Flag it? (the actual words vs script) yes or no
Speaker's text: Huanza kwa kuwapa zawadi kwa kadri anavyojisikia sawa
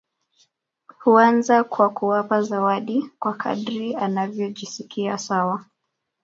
no